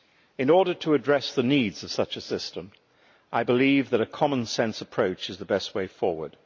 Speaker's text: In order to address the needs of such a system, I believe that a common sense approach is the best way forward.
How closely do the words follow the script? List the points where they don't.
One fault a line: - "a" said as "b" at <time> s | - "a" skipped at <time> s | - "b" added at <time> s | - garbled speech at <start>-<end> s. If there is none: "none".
none